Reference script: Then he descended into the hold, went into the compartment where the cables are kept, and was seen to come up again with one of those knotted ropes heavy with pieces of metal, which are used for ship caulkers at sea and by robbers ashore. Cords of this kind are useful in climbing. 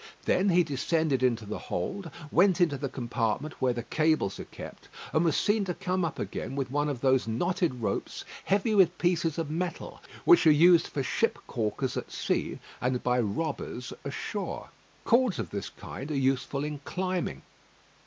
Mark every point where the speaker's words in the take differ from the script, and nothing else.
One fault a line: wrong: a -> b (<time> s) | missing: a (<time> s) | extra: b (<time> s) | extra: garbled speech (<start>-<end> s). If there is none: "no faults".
no faults